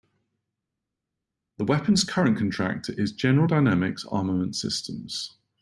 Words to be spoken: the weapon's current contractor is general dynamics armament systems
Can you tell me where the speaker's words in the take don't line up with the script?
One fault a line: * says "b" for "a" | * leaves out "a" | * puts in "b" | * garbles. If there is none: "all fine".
all fine